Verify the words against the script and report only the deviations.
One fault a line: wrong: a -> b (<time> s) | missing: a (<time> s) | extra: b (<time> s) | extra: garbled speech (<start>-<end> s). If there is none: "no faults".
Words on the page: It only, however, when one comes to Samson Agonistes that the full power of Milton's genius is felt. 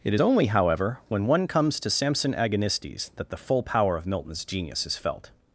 no faults